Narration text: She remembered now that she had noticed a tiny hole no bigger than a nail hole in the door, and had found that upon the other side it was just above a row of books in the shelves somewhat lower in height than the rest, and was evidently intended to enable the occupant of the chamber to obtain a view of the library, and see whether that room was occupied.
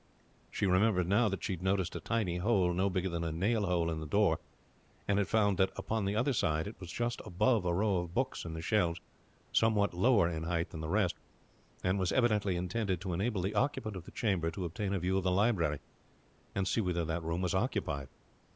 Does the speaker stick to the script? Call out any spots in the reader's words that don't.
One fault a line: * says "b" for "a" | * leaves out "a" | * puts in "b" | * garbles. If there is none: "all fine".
all fine